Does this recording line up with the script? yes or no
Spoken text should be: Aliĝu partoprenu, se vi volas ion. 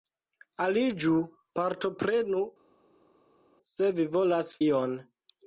yes